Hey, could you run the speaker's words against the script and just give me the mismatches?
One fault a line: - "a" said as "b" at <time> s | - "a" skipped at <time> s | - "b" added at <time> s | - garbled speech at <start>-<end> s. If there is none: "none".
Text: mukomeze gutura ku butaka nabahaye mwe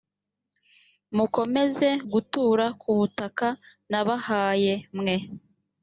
none